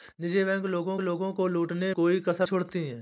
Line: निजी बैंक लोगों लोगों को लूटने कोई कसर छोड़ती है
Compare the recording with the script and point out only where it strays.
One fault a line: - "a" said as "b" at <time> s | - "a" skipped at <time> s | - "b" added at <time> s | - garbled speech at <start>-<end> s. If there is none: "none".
none